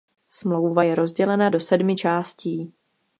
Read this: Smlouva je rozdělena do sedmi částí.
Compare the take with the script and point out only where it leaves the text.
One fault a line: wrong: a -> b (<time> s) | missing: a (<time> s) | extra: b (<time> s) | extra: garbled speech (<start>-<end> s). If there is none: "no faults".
no faults